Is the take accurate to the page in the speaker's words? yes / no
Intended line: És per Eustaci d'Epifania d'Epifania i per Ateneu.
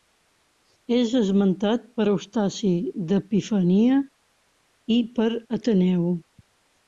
no